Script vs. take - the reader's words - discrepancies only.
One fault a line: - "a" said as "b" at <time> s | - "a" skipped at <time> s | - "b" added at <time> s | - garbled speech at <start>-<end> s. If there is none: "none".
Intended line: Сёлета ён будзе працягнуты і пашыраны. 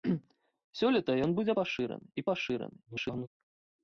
- "працягнуты" said as "пашыраны" at 1.6 s
- garbled speech at 2.9-3.3 s